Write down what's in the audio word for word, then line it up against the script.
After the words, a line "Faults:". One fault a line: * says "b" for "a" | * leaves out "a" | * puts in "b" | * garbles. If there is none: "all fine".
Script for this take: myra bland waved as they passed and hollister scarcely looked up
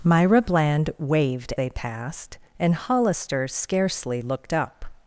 myra bland waved they passed and hollister scarcely looked up
Faults:
* leaves out "as"